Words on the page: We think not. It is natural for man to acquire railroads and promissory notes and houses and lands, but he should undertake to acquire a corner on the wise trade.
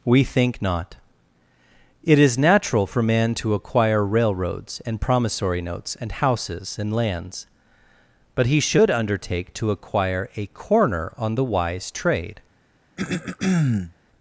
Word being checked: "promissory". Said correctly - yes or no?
yes